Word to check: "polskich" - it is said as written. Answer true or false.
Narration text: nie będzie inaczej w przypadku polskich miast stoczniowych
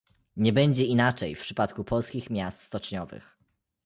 true